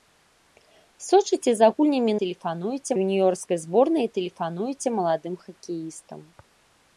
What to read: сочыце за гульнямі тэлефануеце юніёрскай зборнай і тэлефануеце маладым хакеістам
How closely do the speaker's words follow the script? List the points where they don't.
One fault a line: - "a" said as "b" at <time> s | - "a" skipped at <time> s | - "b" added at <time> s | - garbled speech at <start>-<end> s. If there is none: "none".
none